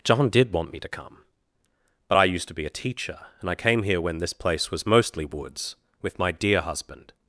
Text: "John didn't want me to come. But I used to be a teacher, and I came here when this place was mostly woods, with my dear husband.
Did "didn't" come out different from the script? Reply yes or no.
yes